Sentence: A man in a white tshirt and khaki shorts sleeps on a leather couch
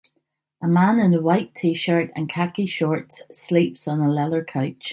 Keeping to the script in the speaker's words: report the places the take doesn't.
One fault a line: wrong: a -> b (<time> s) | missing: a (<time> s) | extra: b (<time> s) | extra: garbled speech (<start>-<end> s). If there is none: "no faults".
no faults